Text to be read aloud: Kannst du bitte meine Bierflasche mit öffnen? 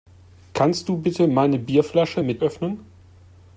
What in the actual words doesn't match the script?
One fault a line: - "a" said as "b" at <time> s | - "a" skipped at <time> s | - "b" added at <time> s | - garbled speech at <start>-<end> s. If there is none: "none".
none